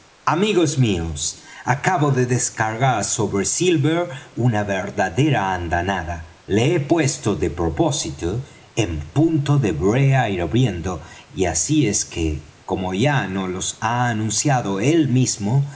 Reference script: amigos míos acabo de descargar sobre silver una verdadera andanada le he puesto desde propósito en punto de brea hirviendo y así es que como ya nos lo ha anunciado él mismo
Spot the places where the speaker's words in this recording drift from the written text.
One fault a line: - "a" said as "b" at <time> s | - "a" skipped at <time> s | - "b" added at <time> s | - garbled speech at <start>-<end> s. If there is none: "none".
- "desde" said as "de" at 7.3 s